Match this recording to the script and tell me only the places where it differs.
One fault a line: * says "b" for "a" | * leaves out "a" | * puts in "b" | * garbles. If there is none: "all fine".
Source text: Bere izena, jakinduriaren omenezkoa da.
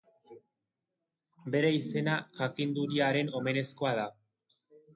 all fine